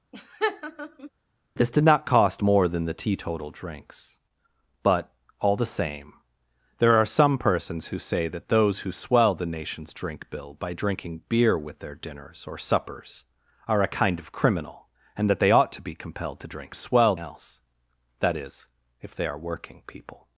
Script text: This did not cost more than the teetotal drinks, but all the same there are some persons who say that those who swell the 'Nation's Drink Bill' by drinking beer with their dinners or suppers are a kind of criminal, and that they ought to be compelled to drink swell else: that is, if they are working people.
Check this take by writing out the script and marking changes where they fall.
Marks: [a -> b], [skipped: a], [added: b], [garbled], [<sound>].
[laugh] This did not cost more than the teetotal drinks, but all the same there are some persons who say that those who swell the 'Nation's Drink Bill' by drinking beer with their dinners or suppers are a kind of criminal, and that they ought to be compelled to drink swell else: that is, if they are working people.